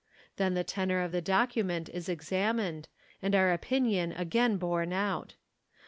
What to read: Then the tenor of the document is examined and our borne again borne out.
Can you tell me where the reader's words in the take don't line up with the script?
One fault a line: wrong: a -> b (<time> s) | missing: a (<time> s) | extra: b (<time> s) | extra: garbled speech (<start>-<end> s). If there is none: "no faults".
wrong: borne -> opinion (3.5 s)